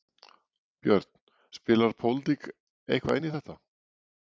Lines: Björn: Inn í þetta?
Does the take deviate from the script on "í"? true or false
false